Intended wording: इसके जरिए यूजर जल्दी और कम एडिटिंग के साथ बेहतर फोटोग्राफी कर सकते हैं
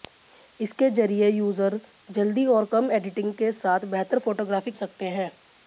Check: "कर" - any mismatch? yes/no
yes